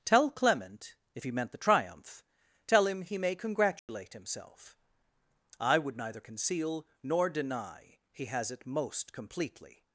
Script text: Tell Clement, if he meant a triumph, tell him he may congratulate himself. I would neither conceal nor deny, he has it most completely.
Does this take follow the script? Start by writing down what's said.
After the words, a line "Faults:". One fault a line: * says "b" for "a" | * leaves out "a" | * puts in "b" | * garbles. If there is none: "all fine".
Tell Clement, if he meant the triumph, tell him he may congratulate himself. I would neither conceal nor deny, he has it most completely.
Faults:
* says "the" for "a"